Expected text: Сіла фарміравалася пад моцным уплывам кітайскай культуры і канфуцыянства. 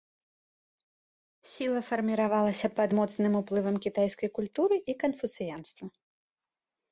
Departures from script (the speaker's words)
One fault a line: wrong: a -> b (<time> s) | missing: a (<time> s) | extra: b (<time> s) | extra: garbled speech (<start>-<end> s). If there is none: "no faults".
no faults